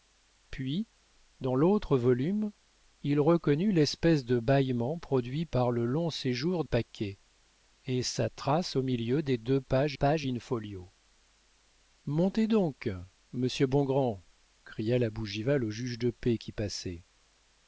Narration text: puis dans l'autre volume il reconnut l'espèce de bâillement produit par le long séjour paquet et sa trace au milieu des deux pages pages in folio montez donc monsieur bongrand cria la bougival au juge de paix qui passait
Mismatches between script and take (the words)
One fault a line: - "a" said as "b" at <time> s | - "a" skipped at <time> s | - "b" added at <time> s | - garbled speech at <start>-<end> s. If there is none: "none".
none